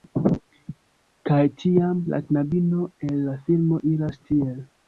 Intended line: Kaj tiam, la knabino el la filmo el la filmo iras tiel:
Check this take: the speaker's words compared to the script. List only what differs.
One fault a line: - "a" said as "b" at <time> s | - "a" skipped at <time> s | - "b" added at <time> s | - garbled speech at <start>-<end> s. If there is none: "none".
- "el la filmo" skipped at 3.8 s